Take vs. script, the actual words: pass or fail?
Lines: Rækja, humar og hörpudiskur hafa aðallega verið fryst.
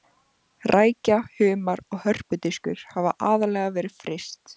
pass